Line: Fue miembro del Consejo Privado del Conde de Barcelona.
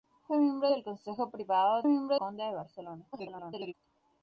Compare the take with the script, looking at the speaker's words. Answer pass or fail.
fail